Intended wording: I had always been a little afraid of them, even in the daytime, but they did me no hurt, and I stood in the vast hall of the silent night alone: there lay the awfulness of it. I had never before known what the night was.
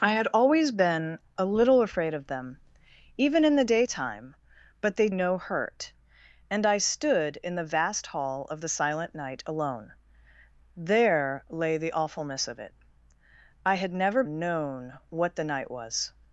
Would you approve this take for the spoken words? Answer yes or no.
no